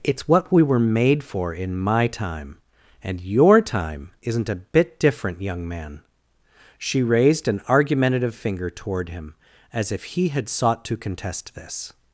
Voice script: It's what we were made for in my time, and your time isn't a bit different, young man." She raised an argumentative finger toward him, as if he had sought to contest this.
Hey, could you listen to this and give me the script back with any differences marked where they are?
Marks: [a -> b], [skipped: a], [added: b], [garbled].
It's what we were made for in my time, and your time isn't a bit different, young man." She raised an argumentative finger toward him, as if he had sought to contest this.